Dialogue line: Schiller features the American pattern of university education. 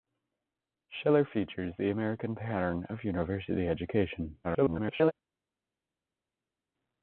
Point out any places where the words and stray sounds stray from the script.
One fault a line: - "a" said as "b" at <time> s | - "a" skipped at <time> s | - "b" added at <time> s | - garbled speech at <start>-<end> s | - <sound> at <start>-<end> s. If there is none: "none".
- garbled speech at 4.4-5.1 s